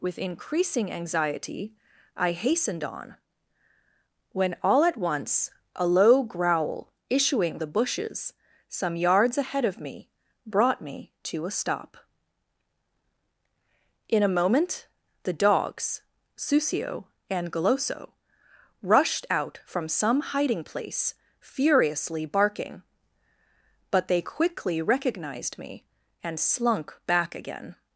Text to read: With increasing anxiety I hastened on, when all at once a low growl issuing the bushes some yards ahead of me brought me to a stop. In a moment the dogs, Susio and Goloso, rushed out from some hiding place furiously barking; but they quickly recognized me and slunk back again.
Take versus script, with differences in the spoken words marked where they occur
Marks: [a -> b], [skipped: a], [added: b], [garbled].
With increasing anxiety I hastened on, when all at once a low growl issuing the bushes some yards ahead of me brought me to a stop. In a moment the dogs, Susio and Goloso, rushed out from some hiding place furiously barking; but they quickly recognized me and slunk back again.